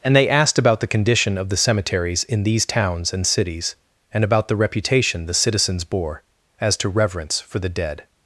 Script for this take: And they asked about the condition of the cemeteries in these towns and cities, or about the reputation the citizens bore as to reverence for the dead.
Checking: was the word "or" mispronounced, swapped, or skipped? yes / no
yes